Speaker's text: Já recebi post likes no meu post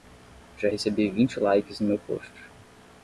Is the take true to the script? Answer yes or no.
no